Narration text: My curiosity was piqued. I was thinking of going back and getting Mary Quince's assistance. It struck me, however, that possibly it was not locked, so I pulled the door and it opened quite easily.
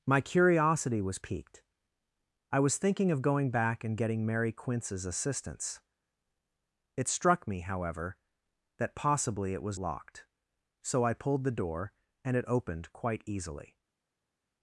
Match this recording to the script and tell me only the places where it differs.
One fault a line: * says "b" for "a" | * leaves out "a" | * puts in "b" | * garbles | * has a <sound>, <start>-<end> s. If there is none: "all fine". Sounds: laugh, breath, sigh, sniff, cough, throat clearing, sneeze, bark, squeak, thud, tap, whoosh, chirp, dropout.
* leaves out "not"